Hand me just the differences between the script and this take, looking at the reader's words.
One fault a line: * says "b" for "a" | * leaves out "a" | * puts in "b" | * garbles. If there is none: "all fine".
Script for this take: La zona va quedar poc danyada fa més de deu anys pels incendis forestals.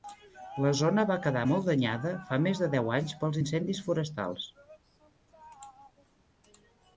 * says "molt" for "poc"